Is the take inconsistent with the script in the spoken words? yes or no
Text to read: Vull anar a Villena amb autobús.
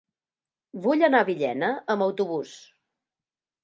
no